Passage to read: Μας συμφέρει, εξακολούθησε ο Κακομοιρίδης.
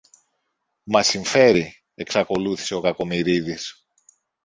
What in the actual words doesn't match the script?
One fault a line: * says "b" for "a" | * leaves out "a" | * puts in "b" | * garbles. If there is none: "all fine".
all fine